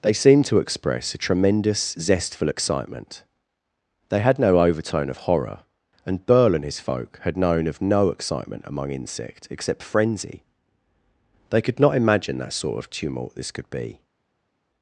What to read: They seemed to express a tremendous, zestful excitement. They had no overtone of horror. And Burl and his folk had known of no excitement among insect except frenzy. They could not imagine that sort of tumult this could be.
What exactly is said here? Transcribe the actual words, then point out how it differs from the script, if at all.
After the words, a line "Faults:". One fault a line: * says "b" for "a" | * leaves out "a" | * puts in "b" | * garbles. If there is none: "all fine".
They seemed to express a tremendous, zestful excitement. They had no overtone of horror. And Burl and his folk had known of no excitement among insect except frenzy. They could not imagine that sort of tumult this could be.
Faults:
all fine